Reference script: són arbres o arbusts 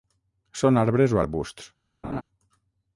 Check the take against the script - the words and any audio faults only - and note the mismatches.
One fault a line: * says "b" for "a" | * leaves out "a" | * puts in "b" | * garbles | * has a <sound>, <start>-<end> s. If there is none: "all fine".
* has a laugh, 2.0-2.2 s